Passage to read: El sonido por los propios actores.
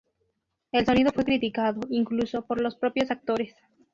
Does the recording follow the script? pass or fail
fail